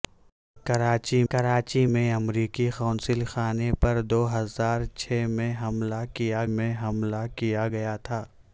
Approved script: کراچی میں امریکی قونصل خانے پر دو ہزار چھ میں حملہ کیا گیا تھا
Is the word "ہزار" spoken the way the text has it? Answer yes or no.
yes